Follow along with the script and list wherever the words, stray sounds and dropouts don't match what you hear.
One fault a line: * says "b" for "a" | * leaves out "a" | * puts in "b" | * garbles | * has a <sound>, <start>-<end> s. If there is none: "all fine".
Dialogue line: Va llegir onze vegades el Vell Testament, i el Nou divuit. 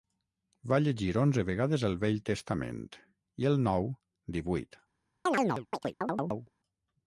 * has a chirp, 5.3-6.5 s